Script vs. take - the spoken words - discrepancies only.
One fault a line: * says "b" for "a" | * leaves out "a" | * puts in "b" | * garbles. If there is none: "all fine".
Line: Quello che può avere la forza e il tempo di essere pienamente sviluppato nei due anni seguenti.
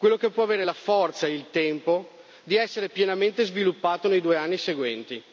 all fine